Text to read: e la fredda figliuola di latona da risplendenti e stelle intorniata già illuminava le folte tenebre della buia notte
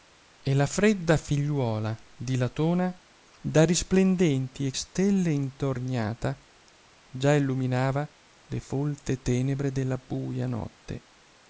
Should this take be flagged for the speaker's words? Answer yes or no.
no